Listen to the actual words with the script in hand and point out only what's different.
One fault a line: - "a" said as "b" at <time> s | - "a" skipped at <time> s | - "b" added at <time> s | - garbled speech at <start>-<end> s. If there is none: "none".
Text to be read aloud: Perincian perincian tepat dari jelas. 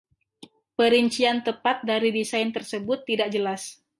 - "perincian" skipped at 1.4 s
- "desain tersebut tidak" added at 2.1 s